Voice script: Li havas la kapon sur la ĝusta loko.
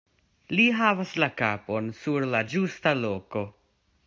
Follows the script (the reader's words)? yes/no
yes